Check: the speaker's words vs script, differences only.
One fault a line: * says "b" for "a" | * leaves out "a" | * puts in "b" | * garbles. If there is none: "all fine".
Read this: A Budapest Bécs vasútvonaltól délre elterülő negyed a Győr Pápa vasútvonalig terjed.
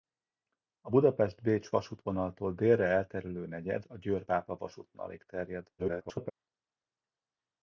* garbles